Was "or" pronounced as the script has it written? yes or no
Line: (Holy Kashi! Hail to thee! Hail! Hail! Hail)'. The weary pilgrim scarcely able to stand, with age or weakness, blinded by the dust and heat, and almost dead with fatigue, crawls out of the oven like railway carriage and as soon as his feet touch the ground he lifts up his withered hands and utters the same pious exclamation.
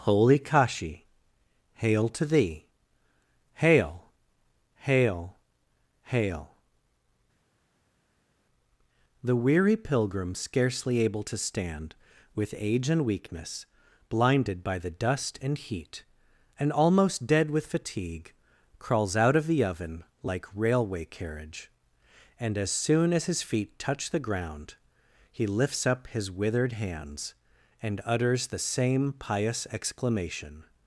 no